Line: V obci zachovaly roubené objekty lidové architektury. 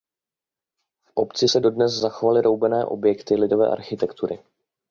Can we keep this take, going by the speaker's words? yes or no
no